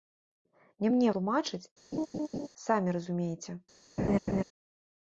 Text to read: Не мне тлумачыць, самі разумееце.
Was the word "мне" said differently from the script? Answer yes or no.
no